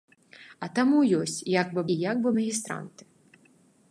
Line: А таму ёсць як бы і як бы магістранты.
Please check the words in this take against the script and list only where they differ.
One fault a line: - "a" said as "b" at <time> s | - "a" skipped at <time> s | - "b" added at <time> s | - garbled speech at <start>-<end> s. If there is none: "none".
none